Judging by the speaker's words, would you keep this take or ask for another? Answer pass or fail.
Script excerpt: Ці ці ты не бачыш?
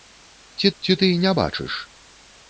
pass